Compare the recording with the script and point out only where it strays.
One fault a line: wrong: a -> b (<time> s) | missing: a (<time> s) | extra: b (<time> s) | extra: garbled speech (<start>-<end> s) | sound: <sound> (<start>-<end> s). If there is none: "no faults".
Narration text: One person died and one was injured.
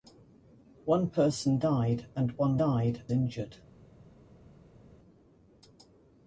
wrong: was -> died (2.6 s)